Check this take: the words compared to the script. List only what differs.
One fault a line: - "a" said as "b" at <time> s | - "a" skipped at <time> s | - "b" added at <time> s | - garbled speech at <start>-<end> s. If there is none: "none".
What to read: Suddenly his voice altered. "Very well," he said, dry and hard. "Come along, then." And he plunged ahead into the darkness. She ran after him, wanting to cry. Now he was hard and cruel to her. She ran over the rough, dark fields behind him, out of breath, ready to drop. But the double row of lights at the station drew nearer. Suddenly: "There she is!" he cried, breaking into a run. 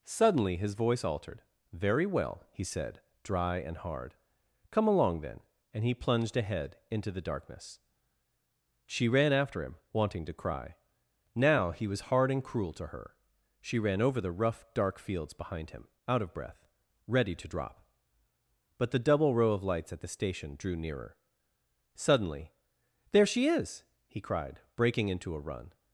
none